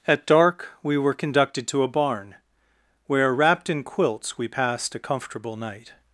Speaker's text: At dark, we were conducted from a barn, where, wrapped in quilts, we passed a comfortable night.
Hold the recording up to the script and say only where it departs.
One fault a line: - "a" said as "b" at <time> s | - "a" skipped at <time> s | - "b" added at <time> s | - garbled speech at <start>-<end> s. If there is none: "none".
- "from" said as "to" at 1.7 s